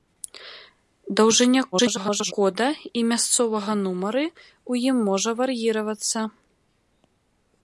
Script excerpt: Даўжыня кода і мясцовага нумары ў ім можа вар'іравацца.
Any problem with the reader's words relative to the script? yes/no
yes